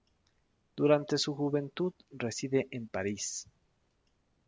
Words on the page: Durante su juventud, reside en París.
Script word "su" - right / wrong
right